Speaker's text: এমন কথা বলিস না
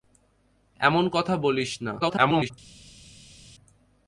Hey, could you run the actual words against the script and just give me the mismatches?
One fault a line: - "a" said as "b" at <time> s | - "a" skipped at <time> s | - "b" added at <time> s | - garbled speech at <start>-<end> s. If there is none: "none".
- garbled speech at 2.0-2.5 s